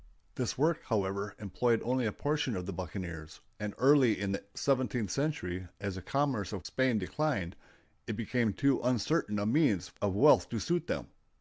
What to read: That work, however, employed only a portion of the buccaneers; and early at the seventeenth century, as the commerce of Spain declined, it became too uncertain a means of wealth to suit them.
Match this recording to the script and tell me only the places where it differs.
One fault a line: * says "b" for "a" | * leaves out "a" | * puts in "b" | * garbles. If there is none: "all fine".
* says "This" for "That"
* says "in" for "at"